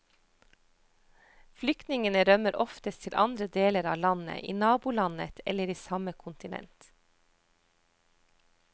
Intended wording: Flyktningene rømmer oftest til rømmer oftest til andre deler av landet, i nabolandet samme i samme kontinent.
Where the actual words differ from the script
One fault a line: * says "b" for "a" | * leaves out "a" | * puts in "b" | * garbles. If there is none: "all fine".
* leaves out "rømmer oftest til"
* says "eller" for "samme"